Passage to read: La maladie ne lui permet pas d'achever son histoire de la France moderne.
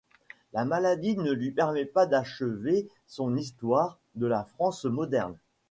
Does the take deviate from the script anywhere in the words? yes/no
no